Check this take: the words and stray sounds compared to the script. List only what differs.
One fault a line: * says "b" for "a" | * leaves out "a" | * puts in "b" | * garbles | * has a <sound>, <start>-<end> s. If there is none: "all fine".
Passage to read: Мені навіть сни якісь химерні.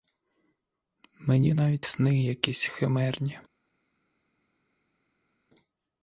all fine